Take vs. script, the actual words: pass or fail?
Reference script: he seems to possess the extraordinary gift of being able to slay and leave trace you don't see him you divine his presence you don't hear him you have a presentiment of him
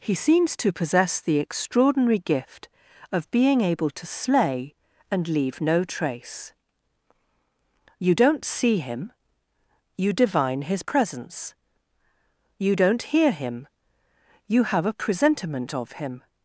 fail